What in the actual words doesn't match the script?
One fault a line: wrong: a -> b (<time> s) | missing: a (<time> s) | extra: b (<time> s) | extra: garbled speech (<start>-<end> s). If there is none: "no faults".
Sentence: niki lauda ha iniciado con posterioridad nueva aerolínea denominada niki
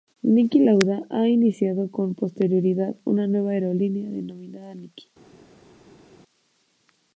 extra: una (3.0 s)